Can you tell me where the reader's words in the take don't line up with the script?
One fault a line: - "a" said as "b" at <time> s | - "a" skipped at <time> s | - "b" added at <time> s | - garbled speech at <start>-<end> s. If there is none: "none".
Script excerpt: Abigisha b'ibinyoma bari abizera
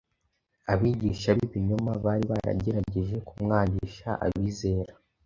- "baragerageje kumwangisha" added at 2.3 s